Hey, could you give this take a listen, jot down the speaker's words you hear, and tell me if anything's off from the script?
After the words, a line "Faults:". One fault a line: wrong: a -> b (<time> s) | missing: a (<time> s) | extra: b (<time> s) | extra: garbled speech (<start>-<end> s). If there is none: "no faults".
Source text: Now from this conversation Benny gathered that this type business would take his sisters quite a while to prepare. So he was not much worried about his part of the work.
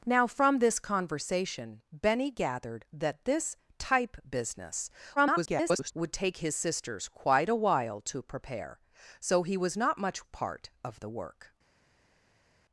Now from this conversation Benny gathered that this type business [garbled] would take his sisters quite a while to prepare. So he was not much part of the work.
Faults:
extra: garbled speech (5.2-5.9 s)
missing: worried about his (10.2 s)